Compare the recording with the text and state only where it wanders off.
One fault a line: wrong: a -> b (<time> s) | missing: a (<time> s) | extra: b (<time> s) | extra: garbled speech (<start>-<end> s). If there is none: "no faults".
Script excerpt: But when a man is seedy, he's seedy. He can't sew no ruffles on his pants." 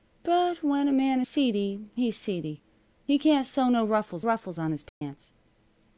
missing: is (1.2 s)
extra: ruffles (4.2 s)